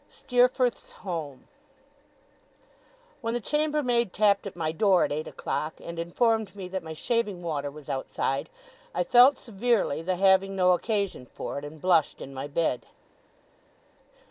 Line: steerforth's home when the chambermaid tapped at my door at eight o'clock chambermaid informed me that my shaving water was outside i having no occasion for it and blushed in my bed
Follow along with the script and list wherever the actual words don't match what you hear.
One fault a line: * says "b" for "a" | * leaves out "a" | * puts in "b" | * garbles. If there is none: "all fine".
* says "and" for "chambermaid"
* puts in "felt severely the"